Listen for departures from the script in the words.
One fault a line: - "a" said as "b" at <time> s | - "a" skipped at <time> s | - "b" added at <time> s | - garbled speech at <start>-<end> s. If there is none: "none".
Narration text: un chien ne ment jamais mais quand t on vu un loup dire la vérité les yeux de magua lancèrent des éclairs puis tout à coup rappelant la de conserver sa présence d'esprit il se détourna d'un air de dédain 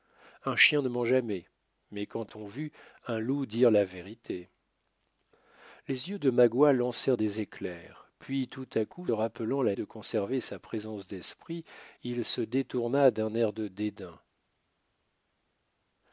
none